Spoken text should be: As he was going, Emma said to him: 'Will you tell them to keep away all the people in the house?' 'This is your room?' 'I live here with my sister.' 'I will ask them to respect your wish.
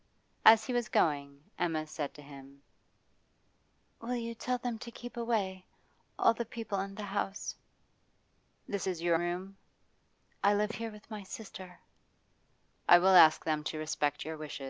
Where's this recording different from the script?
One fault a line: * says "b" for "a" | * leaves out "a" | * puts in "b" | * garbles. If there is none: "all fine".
all fine